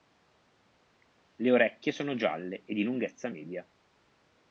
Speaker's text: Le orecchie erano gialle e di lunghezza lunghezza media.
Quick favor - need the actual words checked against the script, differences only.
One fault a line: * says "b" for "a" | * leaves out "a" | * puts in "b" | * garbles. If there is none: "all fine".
* says "sono" for "erano"
* leaves out "lunghezza"